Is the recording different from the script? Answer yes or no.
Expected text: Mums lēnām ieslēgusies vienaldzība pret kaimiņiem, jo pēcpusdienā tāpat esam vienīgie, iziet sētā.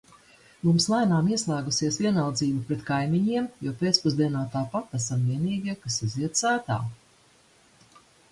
yes